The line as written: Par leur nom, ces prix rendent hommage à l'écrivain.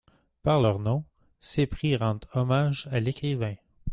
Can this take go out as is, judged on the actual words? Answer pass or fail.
pass